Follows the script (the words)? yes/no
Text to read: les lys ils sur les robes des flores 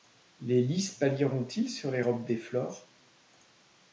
no